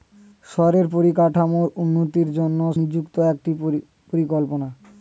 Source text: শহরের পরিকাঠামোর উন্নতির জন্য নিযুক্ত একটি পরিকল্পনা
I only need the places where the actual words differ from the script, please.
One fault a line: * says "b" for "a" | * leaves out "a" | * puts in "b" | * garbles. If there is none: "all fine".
all fine